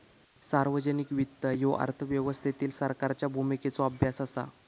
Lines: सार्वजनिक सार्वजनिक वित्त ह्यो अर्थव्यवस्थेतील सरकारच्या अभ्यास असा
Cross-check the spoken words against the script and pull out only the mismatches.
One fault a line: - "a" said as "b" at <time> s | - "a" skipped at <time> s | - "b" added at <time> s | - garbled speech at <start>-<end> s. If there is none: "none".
- "सार्वजनिक" skipped at 1.1 s
- "भूमिकेचो" added at 3.3 s